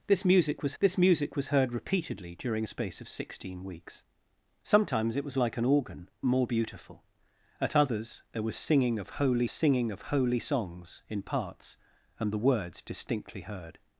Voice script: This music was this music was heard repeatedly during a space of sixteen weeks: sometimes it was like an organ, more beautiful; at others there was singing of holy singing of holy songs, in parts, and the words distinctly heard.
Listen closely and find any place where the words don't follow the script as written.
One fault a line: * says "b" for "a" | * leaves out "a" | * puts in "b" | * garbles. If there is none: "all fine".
all fine